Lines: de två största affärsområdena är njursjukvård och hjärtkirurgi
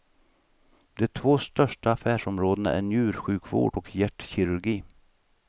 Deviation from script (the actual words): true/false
false